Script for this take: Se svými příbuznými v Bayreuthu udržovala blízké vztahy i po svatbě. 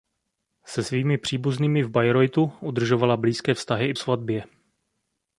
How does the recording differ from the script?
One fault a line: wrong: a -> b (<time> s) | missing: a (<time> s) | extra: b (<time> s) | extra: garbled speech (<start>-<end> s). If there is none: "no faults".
missing: po (3.9 s)